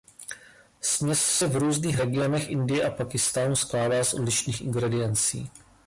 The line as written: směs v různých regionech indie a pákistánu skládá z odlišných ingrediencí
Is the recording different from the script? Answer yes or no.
yes